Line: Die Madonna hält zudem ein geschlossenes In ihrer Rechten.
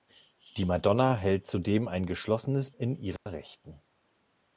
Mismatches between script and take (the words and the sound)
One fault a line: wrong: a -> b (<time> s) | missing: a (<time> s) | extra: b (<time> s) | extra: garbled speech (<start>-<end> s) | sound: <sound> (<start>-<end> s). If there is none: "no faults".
sound: dropout (3.2-3.3 s)